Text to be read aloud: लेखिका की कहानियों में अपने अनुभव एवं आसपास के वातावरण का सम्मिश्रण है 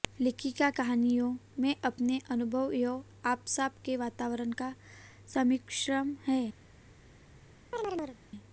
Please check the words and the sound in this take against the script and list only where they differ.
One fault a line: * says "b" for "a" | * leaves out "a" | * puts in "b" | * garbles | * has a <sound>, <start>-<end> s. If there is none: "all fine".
* leaves out "की"
* has a chirp, 7.7-8.2 s